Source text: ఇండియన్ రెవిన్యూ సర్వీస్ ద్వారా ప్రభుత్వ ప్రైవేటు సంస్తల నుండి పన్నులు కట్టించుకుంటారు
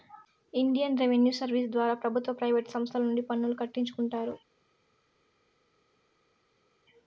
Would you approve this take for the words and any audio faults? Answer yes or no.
yes